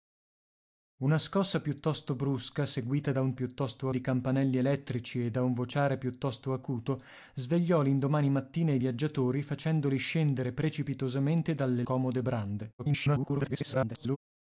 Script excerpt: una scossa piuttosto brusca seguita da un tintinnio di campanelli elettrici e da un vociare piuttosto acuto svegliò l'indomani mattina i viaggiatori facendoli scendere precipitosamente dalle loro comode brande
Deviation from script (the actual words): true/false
true